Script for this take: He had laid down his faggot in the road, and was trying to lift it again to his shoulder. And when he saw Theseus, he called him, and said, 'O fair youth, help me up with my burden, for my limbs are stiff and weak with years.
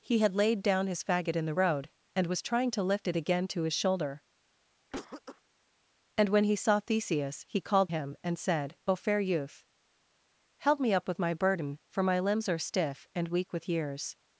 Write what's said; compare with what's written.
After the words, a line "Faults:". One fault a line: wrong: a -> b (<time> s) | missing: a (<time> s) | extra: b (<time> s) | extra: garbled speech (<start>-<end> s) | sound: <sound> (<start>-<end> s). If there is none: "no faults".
He had laid down his faggot in the road, and was trying to lift it again to his shoulder. And when he saw Theseus, he called him, and said, 'O fair youth, help me up with my burden, for my limbs are stiff and weak with years.
Faults:
sound: cough (4.9-5.4 s)